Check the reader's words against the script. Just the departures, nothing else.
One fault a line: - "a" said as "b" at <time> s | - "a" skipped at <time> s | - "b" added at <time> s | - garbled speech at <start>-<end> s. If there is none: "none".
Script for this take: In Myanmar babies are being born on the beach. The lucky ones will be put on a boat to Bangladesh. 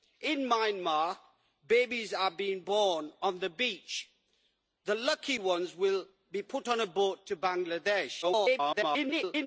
- garbled speech at 8.2-9.5 s